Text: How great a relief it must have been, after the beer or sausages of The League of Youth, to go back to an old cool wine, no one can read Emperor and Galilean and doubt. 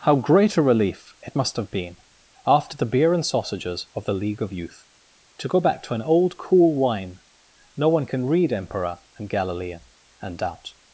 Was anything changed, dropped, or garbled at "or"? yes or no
yes